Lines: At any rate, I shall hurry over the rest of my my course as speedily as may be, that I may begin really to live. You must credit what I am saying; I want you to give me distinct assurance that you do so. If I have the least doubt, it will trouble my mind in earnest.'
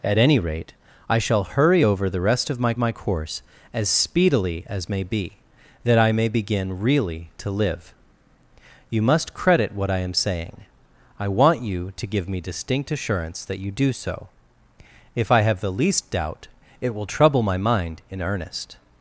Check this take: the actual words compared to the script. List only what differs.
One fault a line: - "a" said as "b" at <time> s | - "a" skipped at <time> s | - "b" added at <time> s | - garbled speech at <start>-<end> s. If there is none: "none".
none